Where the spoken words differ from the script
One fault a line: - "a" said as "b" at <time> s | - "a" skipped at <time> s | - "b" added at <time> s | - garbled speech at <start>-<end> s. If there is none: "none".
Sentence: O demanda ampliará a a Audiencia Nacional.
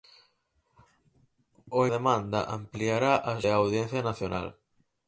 none